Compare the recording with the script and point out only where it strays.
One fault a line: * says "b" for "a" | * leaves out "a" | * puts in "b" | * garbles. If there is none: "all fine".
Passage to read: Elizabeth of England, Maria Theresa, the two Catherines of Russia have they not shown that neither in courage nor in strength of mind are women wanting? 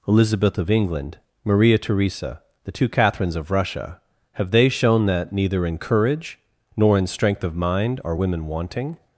* leaves out "not"